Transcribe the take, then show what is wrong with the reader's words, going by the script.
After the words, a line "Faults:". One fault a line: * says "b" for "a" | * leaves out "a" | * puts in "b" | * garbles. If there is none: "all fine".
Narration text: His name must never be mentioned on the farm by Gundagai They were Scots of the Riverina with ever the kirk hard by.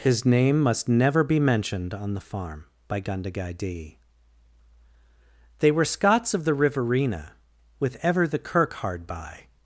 His name must never be mentioned on the farm by Gundagai d They were Scots of the Riverina with ever the kirk hard by.
Faults:
* puts in "d"